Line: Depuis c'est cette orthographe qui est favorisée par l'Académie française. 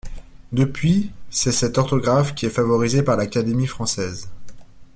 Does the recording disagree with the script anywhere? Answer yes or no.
no